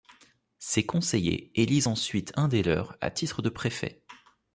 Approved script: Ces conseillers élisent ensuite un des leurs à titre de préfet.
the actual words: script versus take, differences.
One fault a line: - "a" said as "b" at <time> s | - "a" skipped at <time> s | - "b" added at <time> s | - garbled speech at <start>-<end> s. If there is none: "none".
none